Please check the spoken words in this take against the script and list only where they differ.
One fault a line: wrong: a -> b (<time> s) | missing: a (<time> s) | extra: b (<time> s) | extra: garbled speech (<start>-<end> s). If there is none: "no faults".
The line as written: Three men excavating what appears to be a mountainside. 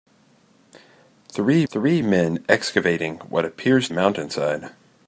extra: three (1.7 s)
missing: to be a (3.9 s)